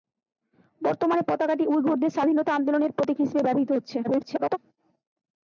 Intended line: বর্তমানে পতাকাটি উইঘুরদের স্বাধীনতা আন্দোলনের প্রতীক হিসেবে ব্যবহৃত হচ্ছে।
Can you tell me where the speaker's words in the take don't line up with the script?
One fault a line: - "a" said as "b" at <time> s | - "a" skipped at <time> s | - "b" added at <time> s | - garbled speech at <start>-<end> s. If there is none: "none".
- garbled speech at 4.0-4.6 s